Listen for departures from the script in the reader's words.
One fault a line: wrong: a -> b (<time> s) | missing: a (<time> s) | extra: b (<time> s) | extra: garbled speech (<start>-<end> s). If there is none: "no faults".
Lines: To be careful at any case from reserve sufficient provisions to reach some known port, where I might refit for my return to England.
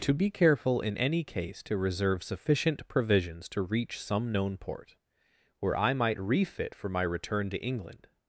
wrong: at -> in (0.8 s)
wrong: from -> to (1.6 s)